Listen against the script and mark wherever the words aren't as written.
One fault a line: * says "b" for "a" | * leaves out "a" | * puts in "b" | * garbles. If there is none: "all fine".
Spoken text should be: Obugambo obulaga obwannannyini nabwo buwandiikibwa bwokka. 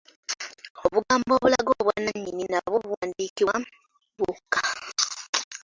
all fine